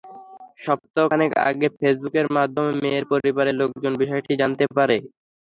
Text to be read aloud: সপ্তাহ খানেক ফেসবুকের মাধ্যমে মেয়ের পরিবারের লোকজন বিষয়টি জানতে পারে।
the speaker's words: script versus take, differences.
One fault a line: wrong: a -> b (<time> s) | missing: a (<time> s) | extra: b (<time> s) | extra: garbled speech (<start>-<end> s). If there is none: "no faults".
extra: আগে (1.5 s)